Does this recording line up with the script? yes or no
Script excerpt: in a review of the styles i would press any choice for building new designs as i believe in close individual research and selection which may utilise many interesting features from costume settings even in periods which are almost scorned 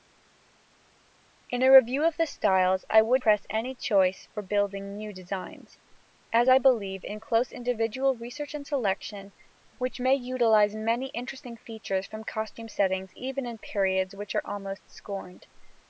yes